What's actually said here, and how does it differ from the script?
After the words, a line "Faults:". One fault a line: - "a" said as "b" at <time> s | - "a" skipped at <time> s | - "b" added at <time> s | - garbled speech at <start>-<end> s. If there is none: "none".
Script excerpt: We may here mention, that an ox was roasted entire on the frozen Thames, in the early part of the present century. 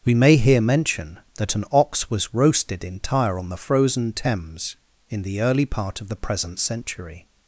We may here mention, that an ox was roasted entire on the frozen Thames, in the early part of the present century.
Faults:
none